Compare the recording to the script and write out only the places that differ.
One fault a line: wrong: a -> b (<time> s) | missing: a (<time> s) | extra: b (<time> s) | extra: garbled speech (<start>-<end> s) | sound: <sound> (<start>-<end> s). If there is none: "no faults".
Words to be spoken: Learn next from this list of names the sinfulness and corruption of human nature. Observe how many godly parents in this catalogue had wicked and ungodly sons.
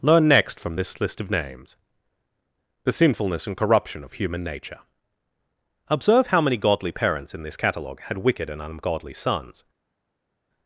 no faults